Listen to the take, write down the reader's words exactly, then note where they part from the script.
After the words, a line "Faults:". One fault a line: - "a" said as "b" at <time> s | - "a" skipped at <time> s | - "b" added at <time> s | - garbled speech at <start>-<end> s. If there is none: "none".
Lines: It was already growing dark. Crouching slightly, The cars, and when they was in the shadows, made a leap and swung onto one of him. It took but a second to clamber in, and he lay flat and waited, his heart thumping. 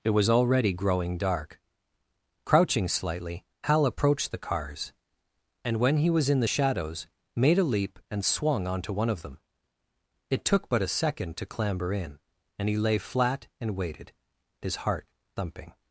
It was already growing dark. Crouching slightly, Hal approached the cars, and when he was in the shadows, made a leap and swung onto one of them. It took but a second to clamber in, and he lay flat and waited, his heart thumping.
Faults:
- "Hal approached" added at 3.6 s
- "they" said as "he" at 6.0 s
- "him" said as "them" at 9.2 s